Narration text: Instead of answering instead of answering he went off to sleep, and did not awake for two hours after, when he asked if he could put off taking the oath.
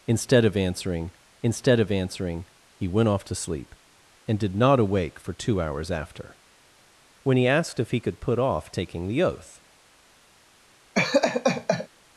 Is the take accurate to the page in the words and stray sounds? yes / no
no